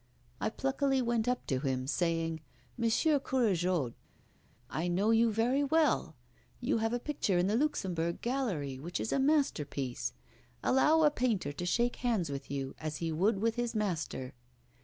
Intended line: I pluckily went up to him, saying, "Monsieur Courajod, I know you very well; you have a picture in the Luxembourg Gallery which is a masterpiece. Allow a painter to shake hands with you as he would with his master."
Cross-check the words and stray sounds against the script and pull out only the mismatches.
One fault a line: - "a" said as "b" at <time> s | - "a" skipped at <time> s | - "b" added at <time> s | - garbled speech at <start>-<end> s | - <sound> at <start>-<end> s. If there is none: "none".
none